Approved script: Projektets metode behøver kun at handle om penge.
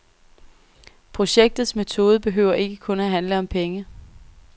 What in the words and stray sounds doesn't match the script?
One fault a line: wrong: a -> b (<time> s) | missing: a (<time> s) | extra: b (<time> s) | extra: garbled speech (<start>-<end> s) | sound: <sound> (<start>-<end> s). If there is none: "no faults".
extra: ikke (2.5 s)